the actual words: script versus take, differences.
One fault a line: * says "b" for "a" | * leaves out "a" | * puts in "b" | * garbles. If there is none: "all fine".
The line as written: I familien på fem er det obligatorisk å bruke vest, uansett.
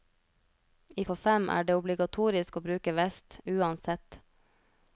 * leaves out "familien"